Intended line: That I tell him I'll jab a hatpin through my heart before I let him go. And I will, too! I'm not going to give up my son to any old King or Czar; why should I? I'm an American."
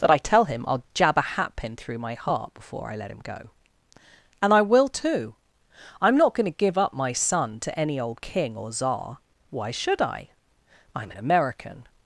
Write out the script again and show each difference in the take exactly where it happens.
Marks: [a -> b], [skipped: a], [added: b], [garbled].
That I tell him I'll jab a hatpin through my heart before I let him go. And I will, too! I'm not going to give up my son to any old King or Czar; why should I? I'm an American."